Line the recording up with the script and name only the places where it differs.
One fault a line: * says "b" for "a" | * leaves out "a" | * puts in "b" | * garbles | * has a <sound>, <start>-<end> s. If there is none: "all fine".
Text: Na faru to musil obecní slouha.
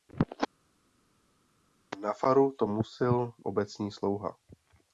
all fine